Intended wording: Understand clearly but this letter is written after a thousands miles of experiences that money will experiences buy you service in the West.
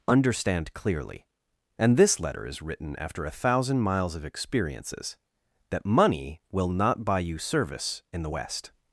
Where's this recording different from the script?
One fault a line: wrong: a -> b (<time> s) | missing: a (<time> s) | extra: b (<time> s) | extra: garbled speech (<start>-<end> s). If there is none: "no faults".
wrong: but -> and (1.8 s)
wrong: thousands -> thousand (3.3 s)
wrong: experiences -> not (6.7 s)